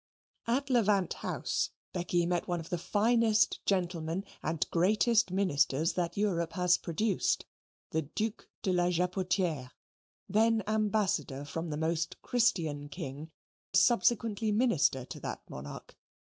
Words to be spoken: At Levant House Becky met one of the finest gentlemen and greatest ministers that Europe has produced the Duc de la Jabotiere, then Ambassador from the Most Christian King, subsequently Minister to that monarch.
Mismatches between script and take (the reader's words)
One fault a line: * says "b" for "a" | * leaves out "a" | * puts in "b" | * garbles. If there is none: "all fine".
all fine